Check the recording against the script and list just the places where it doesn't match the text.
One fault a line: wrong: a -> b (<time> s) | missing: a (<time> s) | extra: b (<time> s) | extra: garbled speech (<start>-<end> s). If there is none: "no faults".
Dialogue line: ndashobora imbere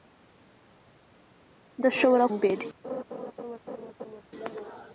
no faults